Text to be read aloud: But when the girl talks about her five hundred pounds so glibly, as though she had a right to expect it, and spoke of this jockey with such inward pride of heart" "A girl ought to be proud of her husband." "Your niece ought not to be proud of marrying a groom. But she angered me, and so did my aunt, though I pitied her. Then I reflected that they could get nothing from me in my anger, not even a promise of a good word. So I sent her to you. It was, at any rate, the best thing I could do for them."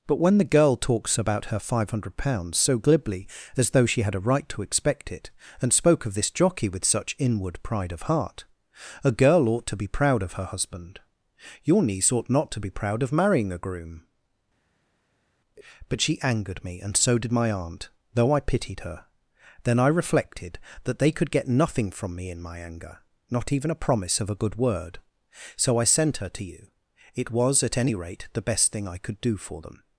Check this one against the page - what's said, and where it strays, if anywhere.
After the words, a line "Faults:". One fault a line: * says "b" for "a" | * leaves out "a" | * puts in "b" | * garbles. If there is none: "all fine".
But when the girl talks about her five hundred pounds so glibly, as though she had a right to expect it, and spoke of this jockey with such inward pride of heart" "A girl ought to be proud of her husband." "Your niece ought not to be proud of marrying a groom. But she angered me, and so did my aunt, though I pitied her. Then I reflected that they could get nothing from me in my anger, not even a promise of a good word. So I sent her to you. It was, at any rate, the best thing I could do for them."
Faults:
all fine